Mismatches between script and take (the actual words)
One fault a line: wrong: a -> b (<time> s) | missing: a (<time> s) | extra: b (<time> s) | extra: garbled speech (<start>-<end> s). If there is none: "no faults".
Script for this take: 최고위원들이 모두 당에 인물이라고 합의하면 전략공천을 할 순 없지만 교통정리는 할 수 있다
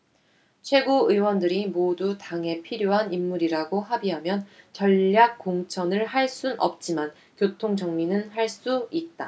extra: 필요한 (2.6 s)